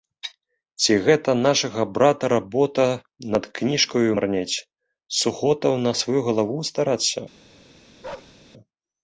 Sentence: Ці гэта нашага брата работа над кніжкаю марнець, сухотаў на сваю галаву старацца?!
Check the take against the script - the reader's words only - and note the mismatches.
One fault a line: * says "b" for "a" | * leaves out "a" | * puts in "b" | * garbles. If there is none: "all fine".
all fine